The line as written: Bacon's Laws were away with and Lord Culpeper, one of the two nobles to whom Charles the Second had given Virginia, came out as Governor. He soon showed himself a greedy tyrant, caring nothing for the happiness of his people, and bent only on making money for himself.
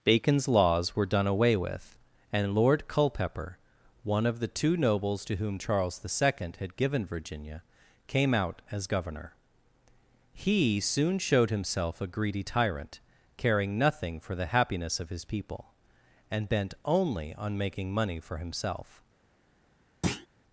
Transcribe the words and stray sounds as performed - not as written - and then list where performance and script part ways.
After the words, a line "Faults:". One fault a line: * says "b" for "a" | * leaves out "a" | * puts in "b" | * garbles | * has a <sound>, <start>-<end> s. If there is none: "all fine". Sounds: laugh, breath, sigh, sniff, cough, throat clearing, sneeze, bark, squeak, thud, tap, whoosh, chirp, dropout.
Bacon's Laws were done away with and Lord Culpeper, one of the two nobles to whom Charles the Second had given Virginia, came out as Governor. He soon showed himself a greedy tyrant, caring nothing for the happiness of his people, and bent only on making money for himself.
Faults:
* puts in "done"
* has a thud, 20.0-20.3 s